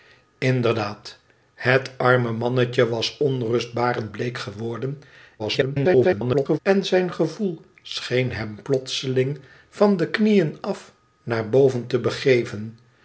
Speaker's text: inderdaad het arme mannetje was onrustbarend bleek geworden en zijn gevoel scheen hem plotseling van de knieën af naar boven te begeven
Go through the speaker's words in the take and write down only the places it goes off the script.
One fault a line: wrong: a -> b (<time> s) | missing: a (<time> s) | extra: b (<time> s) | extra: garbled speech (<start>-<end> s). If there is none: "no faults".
extra: garbled speech (5.4-6.6 s)